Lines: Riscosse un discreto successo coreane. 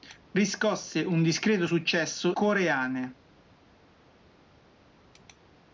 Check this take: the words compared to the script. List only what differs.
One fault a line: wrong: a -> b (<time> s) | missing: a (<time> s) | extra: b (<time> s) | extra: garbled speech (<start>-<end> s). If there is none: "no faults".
no faults